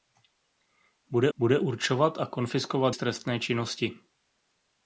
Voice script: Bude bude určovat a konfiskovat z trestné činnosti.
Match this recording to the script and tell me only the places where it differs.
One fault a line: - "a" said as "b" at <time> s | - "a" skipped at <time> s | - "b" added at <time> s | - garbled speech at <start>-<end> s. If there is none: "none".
none